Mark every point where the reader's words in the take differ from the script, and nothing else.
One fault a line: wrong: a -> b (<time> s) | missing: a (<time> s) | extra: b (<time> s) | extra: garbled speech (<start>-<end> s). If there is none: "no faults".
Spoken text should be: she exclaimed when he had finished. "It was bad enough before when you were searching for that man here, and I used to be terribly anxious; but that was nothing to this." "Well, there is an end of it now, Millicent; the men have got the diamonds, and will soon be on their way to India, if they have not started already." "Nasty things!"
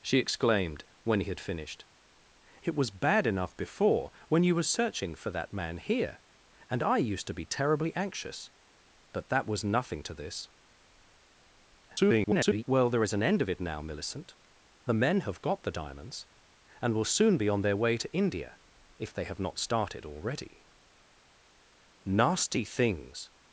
extra: garbled speech (11.9-12.6 s)